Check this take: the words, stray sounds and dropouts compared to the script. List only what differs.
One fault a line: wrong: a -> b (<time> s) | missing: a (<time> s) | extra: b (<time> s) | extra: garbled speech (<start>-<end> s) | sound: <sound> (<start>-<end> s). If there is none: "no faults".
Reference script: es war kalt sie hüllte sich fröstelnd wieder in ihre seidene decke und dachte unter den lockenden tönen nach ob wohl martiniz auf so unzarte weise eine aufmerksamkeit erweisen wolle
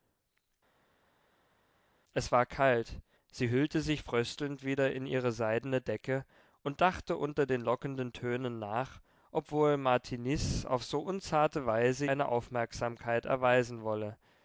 no faults